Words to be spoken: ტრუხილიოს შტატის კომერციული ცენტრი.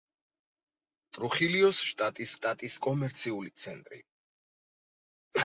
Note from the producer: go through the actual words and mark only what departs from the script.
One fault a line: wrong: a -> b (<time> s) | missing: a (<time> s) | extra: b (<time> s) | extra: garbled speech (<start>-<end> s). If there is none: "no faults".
extra: შტატის (2.4 s)